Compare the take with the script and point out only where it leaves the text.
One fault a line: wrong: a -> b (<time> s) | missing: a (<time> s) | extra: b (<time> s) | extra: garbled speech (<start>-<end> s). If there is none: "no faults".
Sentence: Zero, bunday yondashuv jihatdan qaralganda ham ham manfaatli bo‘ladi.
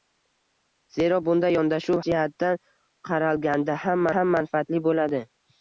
no faults